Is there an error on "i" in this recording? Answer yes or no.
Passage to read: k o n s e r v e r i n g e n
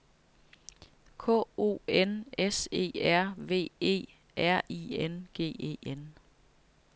no